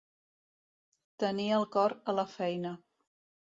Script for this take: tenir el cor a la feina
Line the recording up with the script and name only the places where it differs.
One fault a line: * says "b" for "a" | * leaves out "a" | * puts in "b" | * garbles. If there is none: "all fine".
all fine